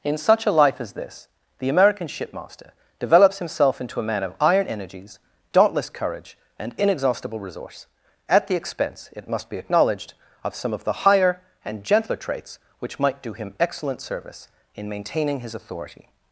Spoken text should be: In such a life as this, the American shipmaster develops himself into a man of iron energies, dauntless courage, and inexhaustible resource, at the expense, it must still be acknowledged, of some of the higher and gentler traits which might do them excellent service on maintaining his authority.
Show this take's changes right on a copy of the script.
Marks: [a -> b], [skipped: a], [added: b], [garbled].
In such a life as this, the American shipmaster develops himself into a man of iron energies, dauntless courage, and inexhaustible resource, at the expense, it must [skipped: still] be acknowledged, of some of the higher and gentler traits which might do [them -> him] excellent service [on -> in] maintaining his authority.